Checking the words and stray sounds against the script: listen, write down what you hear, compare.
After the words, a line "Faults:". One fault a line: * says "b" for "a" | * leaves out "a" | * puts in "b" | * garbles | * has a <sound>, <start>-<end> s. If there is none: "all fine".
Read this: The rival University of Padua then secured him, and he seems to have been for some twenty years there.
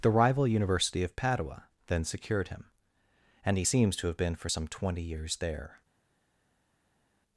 The rival University of Padua then secured him, and he seems to have been for some twenty years there.
Faults:
all fine